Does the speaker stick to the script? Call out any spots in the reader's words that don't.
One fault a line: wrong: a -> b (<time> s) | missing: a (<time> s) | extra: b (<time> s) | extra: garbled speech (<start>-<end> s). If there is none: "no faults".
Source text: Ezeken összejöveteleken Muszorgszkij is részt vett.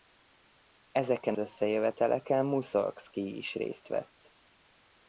no faults